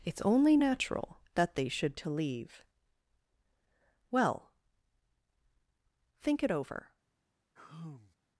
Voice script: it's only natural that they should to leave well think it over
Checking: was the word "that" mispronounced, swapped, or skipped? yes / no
no